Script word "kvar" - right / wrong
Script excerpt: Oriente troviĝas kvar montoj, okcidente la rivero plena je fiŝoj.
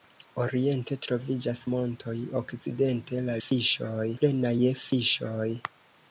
wrong